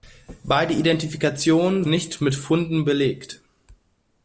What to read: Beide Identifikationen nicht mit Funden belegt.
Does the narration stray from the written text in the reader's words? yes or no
no